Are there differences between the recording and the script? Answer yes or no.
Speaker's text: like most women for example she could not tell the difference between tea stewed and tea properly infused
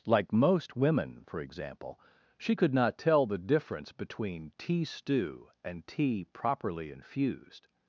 yes